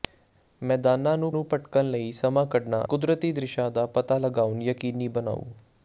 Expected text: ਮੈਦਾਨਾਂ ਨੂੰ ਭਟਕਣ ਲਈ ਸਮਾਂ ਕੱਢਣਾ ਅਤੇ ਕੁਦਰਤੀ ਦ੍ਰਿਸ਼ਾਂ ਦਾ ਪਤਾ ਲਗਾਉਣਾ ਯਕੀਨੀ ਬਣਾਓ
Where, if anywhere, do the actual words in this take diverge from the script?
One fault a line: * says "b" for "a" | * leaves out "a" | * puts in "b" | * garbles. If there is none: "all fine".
* puts in "ਨੂੰ"
* leaves out "ਅਤੇ"